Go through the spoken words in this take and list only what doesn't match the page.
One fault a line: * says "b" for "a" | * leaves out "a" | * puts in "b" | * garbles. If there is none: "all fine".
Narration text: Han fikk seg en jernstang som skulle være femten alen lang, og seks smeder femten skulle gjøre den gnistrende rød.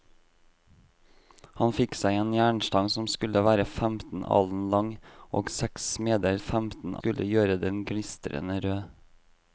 all fine